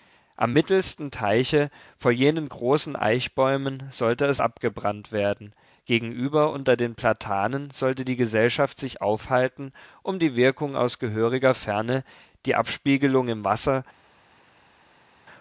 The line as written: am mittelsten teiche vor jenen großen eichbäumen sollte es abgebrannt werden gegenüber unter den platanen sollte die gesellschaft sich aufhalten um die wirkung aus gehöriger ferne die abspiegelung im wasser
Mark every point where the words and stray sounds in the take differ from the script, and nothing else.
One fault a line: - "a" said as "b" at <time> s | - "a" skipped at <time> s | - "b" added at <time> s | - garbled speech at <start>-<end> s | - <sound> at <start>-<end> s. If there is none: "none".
none